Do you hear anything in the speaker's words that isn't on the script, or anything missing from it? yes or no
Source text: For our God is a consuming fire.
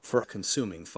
yes